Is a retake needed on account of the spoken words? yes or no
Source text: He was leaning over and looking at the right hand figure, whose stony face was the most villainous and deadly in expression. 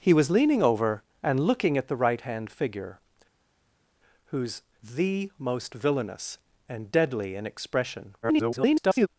yes